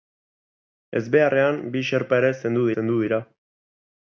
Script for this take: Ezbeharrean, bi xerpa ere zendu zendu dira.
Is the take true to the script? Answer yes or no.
yes